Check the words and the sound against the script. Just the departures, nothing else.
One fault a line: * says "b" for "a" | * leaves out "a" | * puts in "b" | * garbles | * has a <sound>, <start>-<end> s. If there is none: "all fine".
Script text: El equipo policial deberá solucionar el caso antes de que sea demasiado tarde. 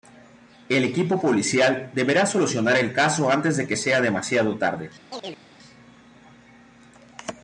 * has a chirp, 5.1-5.4 s